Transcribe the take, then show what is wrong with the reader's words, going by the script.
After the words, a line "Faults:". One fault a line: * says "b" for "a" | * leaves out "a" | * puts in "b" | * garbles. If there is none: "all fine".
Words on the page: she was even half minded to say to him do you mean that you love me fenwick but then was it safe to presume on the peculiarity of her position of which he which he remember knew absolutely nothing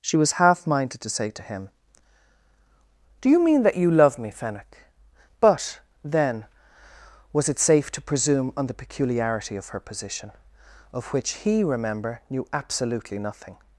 she was half minded to say to him do you mean that you love me fenwick but then was it safe to presume on the peculiarity of her position of which he remember knew absolutely nothing
Faults:
* leaves out "even"
* leaves out "which he"